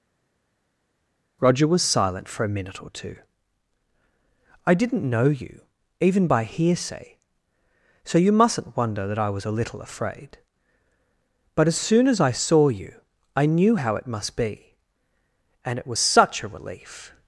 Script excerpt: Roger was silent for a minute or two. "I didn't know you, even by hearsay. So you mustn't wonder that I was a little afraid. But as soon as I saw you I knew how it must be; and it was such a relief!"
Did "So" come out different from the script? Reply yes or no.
no